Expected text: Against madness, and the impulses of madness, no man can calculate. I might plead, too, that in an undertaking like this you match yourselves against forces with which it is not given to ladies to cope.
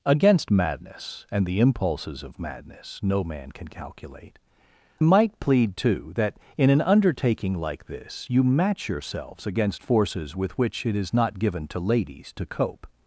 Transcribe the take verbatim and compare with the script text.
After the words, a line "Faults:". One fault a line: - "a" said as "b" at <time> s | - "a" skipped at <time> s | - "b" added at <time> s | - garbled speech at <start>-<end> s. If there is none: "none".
Against madness, and the impulses of madness, no man can calculate. might plead, too, that in an undertaking like this you match yourselves against forces with which it is not given to ladies to cope.
Faults:
- "I" skipped at 4.4 s